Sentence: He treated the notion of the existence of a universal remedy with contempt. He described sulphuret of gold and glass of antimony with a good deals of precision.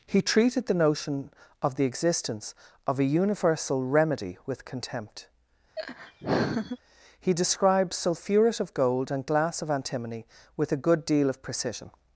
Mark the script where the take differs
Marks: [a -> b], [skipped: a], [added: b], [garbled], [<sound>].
He treated the notion of the existence of a universal remedy with contempt. [laugh] He described sulphuret of gold and glass of antimony with a good [deals -> deal] of precision.